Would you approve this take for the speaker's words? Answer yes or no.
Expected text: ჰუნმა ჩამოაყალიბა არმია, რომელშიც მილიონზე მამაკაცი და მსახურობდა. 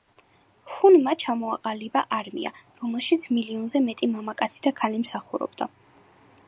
no